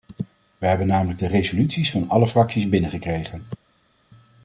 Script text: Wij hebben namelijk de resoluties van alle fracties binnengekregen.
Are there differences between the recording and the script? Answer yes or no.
no